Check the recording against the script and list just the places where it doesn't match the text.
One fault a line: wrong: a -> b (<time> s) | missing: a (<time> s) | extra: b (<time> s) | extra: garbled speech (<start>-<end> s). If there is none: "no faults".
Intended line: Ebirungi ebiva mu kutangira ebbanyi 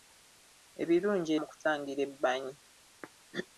missing: ebiva (1.3 s)